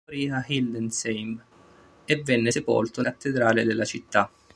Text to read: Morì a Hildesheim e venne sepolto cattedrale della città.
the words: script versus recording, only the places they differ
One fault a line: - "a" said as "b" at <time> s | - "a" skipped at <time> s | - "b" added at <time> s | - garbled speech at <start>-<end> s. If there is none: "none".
none